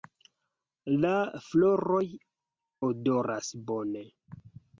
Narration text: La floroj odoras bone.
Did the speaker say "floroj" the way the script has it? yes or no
yes